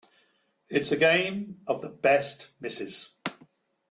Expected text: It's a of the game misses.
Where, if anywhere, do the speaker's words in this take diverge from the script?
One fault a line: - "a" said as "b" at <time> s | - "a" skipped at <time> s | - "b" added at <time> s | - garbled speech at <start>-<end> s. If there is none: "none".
- "game" added at 1.0 s
- "game" said as "best" at 1.9 s